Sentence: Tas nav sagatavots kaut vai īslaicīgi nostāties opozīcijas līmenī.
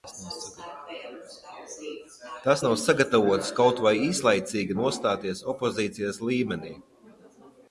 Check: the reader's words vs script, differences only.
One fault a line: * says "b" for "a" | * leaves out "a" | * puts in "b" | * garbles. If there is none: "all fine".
all fine